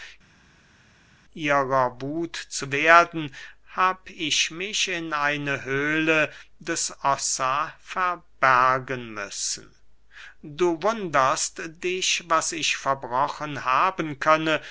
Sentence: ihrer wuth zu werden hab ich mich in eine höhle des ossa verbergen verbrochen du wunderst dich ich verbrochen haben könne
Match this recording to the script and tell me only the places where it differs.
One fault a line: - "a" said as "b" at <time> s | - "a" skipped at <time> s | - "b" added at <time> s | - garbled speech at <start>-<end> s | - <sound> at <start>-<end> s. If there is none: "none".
- "verbrochen" said as "müssen" at 9.1 s
- "was" added at 12.3 s